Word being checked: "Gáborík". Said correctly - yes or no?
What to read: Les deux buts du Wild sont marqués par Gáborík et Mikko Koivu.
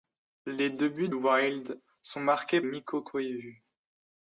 no